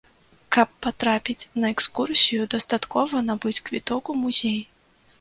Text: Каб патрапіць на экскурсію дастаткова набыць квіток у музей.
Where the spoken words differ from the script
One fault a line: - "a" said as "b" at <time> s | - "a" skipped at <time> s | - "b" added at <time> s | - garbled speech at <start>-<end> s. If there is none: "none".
none